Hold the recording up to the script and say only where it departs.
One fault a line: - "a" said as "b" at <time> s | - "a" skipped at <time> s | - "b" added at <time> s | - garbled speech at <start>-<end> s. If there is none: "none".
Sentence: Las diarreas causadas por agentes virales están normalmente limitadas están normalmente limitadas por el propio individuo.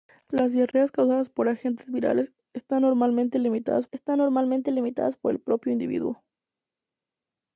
none